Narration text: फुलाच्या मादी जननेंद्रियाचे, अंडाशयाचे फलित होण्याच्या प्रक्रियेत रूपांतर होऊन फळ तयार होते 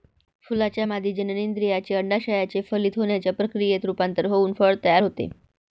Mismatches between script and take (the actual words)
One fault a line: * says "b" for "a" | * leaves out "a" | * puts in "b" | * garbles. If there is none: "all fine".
all fine